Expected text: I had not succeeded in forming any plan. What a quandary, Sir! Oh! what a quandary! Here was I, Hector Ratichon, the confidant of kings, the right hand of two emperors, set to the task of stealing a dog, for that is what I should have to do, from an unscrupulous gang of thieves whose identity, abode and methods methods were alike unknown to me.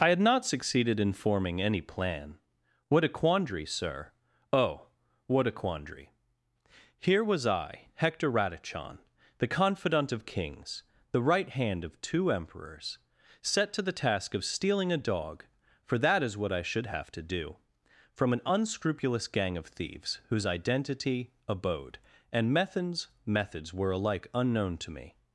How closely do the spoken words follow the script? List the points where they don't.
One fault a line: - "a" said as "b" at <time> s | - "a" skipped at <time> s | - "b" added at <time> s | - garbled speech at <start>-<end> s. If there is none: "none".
none